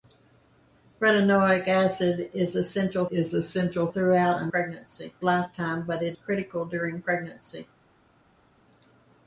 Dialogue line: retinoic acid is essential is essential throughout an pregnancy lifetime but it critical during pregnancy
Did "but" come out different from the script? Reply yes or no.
no